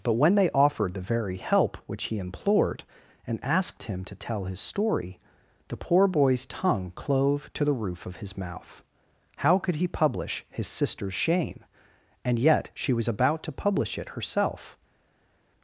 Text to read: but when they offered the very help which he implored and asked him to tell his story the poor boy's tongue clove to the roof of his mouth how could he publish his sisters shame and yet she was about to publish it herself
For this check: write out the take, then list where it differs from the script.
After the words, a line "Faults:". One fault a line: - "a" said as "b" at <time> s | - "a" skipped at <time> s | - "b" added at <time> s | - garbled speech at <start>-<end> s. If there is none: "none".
but when they offered the very help which he implored and asked him to tell his story the poor boy's tongue clove to the roof of his mouth how could he publish his sisters shame and yet she was about to publish it herself
Faults:
none